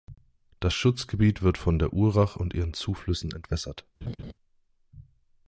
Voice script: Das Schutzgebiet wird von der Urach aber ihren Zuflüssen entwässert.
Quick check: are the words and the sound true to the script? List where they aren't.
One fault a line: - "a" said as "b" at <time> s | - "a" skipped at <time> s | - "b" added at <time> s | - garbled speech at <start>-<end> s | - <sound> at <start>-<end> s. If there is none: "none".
- "aber" said as "und" at 2.3 s
- laugh at 4.0-4.3 s